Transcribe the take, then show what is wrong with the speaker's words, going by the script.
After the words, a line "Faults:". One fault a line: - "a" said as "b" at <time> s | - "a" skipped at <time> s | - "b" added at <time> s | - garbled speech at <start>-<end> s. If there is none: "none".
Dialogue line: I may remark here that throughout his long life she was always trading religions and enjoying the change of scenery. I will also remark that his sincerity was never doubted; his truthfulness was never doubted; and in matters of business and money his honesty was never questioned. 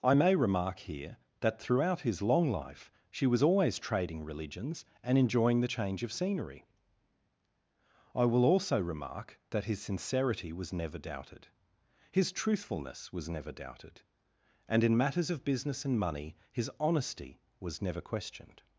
I may remark here that throughout his long life she was always trading religions and enjoying the change of scenery. I will also remark that his sincerity was never doubted; his truthfulness was never doubted; and in matters of business and money his honesty was never questioned.
Faults:
none